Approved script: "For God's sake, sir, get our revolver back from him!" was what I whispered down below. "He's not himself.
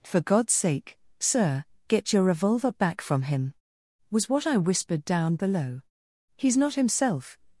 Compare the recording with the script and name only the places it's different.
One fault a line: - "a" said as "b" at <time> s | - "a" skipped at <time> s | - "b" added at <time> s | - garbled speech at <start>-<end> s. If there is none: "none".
- "our" said as "your" at 2.1 s